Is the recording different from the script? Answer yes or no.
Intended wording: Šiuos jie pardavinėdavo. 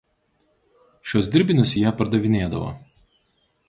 yes